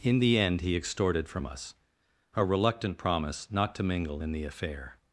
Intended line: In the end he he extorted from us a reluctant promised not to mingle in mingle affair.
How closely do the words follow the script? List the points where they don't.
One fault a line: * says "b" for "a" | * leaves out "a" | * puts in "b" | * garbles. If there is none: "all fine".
* leaves out "he"
* says "promise" for "promised"
* says "the" for "mingle"